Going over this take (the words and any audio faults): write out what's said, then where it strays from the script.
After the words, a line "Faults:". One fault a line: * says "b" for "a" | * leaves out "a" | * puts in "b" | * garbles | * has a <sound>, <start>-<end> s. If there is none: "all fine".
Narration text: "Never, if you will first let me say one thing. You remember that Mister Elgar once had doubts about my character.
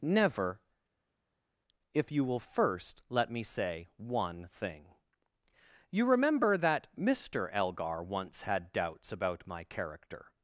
"Never, if you will first let me say one thing. You remember that Mister Elgar once had doubts about my character.
Faults:
all fine